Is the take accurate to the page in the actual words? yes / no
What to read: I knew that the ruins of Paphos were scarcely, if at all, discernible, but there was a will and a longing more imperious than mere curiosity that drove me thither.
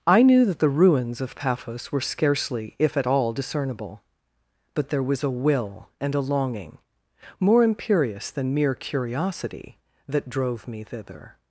yes